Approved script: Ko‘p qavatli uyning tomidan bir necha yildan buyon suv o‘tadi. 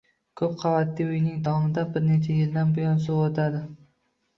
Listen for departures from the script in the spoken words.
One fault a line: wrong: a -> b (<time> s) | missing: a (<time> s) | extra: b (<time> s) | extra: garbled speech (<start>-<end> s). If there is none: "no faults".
no faults